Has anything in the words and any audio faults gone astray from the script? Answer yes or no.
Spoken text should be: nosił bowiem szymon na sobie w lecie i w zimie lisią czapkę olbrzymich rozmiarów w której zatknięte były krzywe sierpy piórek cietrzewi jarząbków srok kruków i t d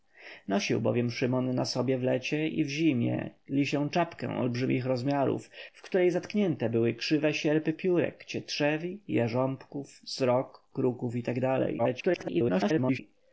yes